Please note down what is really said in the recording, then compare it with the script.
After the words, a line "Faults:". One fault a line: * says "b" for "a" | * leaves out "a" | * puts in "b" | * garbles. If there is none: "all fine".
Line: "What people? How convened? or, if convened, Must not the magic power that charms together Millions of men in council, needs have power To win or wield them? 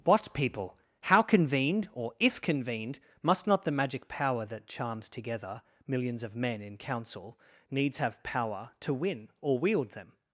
"What people? How convened? or, if convened, Must not the magic power that charms together Millions of men in council, needs have power To win or wield them?
Faults:
all fine